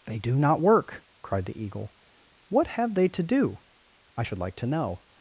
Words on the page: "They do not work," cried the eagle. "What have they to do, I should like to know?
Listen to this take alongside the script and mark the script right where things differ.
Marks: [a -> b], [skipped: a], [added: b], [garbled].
"They do not work," cried the eagle. "What have they to do, I should like to know?